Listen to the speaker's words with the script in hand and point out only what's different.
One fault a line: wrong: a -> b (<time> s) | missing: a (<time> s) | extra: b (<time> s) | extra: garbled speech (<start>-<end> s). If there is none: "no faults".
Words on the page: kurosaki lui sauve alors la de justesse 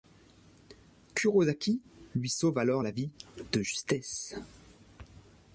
extra: vie (2.9 s)